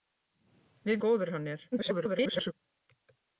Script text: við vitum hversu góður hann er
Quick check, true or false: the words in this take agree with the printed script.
false